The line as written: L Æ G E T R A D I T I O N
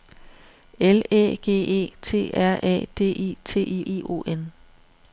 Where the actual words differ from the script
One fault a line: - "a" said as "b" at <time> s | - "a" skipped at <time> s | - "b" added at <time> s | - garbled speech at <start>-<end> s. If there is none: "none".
- "I" added at 3.9 s